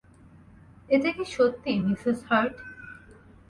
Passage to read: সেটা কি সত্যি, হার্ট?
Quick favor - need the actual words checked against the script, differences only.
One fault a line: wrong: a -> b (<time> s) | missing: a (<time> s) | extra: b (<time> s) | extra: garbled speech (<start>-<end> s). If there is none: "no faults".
wrong: সেটা -> এটা (0.9 s)
extra: মিসেস (1.8 s)